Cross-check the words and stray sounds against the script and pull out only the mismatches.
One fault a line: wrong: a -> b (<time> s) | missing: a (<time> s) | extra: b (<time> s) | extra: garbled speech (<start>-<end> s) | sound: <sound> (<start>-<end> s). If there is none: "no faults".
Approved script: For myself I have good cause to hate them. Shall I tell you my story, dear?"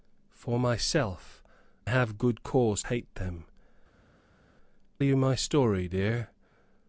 missing: I (1.4 s)
missing: to (2.8 s)
missing: Shall I tell (3.4 s)